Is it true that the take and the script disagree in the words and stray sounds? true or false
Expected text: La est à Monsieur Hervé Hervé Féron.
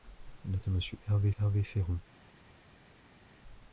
false